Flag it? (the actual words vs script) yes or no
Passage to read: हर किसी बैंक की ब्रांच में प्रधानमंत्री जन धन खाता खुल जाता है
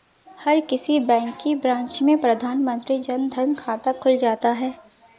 no